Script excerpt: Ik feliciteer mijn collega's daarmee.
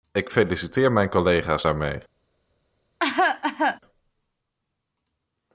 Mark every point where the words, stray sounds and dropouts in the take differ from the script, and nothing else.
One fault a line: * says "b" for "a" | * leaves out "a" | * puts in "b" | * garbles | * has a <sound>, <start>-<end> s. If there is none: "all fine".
* has a cough, 3.0-3.8 s